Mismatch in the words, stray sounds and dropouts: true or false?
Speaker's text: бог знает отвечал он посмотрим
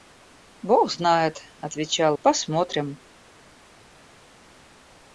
true